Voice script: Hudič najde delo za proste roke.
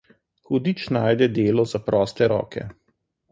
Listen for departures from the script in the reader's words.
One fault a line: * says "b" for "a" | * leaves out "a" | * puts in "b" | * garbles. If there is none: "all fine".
all fine